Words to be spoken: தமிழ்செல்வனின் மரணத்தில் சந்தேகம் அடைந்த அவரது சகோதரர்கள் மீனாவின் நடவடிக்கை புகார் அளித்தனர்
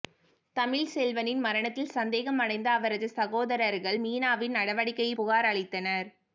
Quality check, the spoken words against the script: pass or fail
pass